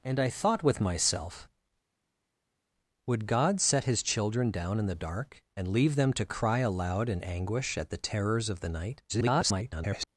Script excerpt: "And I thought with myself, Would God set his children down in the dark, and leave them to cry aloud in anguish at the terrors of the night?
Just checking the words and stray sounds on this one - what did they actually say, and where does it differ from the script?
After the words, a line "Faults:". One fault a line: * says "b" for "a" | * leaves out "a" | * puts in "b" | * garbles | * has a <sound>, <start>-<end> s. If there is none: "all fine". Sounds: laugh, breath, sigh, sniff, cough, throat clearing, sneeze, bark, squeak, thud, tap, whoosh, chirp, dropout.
"And I thought with myself, Would God set his children down in the dark, and leave them to cry aloud in anguish at the terrors of the night? [garbled]
Faults:
* garbles